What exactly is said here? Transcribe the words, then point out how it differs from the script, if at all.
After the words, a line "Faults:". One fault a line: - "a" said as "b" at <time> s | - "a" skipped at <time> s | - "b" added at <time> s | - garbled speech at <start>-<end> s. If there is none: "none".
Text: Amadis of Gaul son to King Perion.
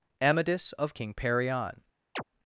Amadis of King Perion.
Faults:
- "Gaul son to" skipped at 0.9 s